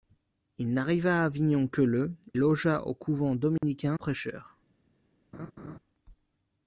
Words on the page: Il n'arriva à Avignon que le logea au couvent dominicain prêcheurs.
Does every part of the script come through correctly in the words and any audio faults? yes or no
no